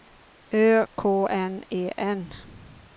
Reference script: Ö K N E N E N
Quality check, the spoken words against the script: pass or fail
fail